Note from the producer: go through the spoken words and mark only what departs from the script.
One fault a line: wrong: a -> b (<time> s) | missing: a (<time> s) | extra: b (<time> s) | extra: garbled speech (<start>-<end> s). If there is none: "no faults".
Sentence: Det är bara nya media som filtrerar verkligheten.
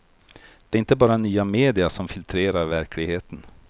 extra: inte (0.8 s)